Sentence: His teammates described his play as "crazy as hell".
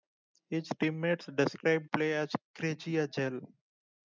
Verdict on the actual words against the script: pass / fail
fail